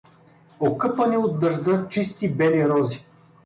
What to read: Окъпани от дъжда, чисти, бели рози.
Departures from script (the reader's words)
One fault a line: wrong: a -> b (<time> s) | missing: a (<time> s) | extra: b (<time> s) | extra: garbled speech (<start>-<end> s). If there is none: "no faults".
no faults